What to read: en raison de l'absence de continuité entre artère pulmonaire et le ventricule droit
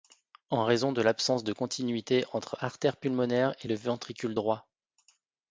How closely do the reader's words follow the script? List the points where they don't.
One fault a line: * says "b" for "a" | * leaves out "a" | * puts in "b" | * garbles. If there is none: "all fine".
all fine